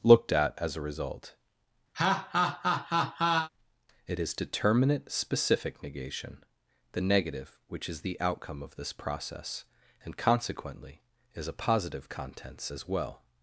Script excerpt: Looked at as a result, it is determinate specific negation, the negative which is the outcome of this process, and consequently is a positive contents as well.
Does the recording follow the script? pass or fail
pass